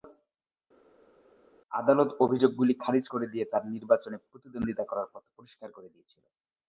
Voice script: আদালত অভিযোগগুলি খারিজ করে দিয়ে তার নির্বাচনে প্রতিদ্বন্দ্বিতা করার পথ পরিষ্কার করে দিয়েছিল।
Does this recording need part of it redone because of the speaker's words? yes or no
no